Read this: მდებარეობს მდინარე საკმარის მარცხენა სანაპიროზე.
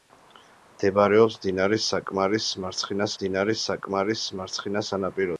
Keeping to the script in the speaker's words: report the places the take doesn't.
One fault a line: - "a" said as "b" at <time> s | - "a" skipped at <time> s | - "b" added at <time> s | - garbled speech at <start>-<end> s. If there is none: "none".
- "მდინარე საკმარის მარცხენა" added at 3.2 s